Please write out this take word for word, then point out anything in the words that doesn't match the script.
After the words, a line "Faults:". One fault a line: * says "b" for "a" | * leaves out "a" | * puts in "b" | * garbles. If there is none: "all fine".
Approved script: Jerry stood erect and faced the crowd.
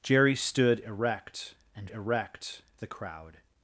Jerry stood erect and erect the crowd.
Faults:
* says "erect" for "faced"